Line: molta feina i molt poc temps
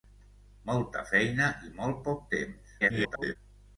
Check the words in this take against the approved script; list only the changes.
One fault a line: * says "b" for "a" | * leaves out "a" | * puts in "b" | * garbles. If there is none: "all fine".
* garbles